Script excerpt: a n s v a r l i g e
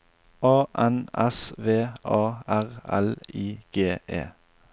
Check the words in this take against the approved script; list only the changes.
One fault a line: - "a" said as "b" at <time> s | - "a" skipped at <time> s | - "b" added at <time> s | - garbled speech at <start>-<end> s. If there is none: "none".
none